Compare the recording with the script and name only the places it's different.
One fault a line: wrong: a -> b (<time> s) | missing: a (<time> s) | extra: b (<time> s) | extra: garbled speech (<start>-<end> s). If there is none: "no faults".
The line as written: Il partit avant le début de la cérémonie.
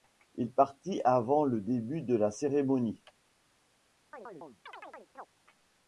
no faults